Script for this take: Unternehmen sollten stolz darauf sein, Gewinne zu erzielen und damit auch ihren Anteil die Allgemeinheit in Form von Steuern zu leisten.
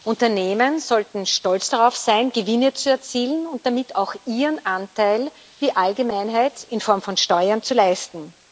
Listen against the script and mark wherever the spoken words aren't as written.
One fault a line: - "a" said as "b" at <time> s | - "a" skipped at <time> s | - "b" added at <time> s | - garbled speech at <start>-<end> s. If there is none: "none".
none